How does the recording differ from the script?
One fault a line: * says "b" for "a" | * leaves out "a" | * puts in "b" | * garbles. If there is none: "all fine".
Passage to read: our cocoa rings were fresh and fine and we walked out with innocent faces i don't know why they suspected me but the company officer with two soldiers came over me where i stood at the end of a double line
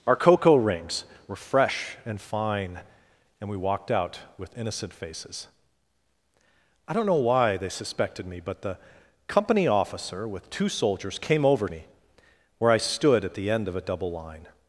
all fine